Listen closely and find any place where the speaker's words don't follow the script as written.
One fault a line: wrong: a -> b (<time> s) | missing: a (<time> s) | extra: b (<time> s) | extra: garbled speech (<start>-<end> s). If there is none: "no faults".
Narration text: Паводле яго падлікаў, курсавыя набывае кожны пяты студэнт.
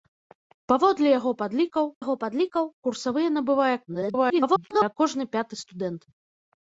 extra: яго падлікаў (2.0 s)
extra: garbled speech (3.9-4.9 s)